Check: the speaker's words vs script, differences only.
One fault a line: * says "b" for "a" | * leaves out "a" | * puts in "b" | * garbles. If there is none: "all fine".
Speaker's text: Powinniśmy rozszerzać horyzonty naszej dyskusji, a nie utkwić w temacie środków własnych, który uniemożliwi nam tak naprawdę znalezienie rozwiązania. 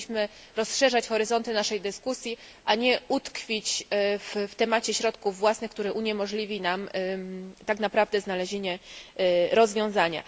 all fine